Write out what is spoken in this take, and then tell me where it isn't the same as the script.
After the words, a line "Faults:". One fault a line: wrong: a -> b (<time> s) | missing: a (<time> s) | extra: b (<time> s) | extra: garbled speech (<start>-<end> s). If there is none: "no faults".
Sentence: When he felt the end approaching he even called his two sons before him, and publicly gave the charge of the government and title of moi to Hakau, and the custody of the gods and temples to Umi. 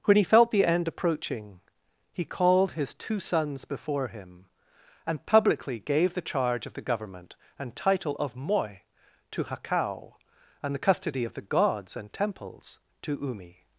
When he felt the end approaching he called his two sons before him, and publicly gave the charge of the government and title of moi to Hakau, and the custody of the gods and temples to Umi.
Faults:
missing: even (2.2 s)